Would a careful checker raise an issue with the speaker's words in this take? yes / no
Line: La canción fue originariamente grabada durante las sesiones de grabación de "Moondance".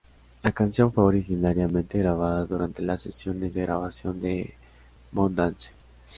no